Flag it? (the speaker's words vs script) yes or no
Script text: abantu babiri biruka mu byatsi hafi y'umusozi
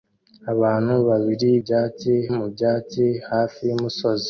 yes